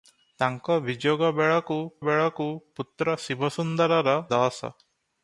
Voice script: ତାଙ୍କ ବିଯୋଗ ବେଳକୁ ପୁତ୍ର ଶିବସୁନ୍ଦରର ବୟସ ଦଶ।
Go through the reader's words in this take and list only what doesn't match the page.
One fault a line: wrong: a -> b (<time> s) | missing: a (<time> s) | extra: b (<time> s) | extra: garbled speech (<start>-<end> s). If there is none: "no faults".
extra: ବେଳକୁ (2.0 s)
missing: ବୟସ (4.2 s)